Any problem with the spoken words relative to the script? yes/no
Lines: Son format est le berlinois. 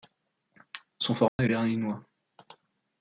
yes